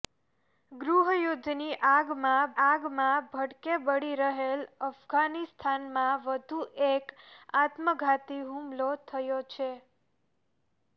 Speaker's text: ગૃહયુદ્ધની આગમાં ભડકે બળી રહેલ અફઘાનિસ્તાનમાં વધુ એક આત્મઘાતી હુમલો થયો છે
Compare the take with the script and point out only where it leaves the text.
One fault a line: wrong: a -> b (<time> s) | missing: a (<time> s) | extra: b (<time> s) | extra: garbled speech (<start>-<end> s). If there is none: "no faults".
extra: આગમાં (2.6 s)